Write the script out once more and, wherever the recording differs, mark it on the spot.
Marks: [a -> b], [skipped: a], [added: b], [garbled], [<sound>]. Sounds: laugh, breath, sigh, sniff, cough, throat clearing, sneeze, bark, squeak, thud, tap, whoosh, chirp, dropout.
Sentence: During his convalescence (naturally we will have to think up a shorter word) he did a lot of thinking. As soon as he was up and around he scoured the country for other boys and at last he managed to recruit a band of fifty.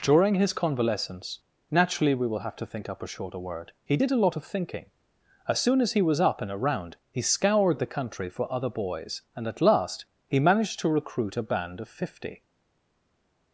During his convalescence (naturally we will have to think up a shorter word) he did a lot of thinking. As soon as he was up and around he scoured the country for other boys and at last he managed to recruit a band of fifty.